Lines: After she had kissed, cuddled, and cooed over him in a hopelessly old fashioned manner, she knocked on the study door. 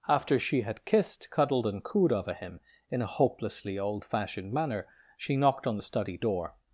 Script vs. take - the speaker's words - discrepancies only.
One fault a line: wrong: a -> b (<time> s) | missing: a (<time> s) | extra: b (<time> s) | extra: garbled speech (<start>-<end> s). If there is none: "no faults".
no faults